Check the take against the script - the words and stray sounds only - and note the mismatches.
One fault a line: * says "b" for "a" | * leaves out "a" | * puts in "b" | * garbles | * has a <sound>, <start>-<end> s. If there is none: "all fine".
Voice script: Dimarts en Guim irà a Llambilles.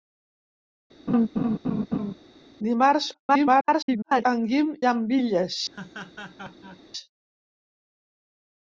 * has a laugh, 1.1-2.1 s
* garbles
* leaves out "irà a"
* has a laugh, 5.7-6.8 s